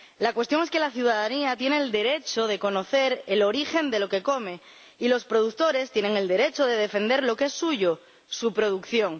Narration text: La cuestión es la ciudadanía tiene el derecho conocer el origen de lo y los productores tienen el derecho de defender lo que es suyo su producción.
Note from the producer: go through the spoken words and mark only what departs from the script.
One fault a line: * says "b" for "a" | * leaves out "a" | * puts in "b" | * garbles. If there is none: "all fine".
* puts in "que"
* puts in "de"
* puts in "que come"